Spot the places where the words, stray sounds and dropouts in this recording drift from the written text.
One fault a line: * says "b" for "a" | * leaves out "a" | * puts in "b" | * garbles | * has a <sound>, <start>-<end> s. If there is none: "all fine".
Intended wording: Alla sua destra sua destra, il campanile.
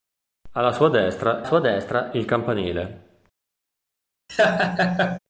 * has a laugh, 4.3-5.2 s